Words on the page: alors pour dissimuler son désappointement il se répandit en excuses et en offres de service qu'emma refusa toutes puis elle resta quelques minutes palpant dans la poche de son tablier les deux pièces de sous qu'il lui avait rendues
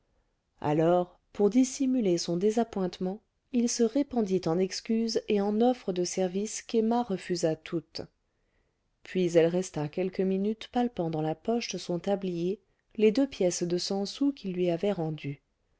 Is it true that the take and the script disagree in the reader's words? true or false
true